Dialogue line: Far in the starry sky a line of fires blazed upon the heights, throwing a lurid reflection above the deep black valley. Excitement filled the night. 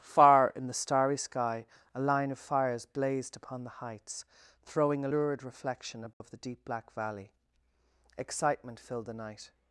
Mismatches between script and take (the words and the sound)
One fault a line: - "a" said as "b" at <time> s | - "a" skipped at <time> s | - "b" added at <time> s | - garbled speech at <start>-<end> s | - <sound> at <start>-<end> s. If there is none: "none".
- dropout at 6.1-6.2 s